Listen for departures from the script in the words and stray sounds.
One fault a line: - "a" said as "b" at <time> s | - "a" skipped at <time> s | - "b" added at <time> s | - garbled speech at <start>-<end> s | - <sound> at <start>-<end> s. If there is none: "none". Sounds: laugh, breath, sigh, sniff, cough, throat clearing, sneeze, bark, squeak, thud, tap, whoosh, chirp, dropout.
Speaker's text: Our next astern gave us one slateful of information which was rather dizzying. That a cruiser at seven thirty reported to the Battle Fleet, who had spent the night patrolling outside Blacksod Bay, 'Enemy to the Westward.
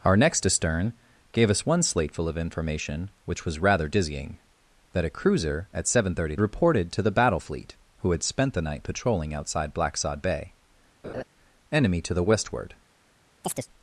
- laugh at 11.0-11.2 s
- chirp at 13.4-13.7 s